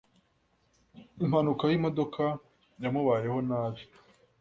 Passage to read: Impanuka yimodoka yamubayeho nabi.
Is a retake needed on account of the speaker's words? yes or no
no